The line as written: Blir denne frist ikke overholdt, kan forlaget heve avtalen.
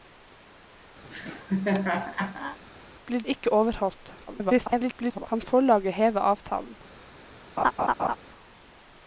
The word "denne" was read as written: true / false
false